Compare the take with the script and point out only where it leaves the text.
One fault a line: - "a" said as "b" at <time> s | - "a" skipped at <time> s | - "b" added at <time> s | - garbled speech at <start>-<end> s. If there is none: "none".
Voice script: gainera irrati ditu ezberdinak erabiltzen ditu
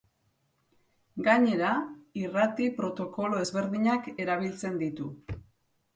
- "ditu" said as "protokolo" at 2.8 s